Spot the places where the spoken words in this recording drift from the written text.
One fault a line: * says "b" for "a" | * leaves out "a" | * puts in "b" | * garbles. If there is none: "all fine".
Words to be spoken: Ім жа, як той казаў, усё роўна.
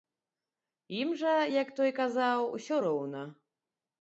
all fine